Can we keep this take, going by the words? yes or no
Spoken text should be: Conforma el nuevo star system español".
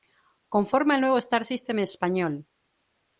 yes